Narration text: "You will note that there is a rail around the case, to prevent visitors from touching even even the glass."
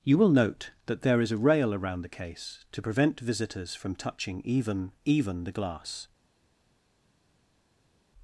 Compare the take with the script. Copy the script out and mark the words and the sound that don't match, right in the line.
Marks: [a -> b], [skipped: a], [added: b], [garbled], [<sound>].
"You will note that there is a rail around the case, to prevent visitors from touching even even the glass."